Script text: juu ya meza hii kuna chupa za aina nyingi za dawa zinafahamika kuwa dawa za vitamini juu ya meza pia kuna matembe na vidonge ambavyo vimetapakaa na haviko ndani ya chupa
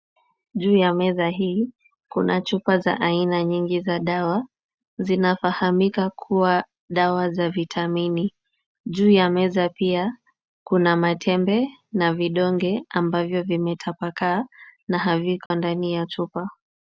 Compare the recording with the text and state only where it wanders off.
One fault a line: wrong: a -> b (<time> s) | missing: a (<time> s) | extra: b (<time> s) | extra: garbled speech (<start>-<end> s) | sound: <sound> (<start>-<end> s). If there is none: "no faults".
sound: dropout (15.5-15.5 s)